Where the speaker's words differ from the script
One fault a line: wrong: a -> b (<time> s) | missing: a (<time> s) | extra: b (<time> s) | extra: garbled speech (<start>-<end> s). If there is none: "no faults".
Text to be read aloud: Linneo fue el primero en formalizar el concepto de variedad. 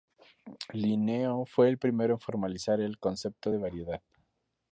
no faults